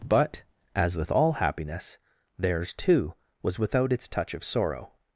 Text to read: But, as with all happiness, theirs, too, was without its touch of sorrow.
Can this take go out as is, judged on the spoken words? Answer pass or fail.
pass